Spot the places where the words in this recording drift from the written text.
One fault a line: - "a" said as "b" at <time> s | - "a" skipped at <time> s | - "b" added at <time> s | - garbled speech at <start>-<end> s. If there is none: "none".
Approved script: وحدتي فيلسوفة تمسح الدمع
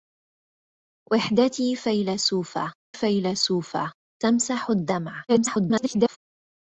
- "فيلسوفة" added at 2.9 s
- garbled speech at 5.3-6.2 s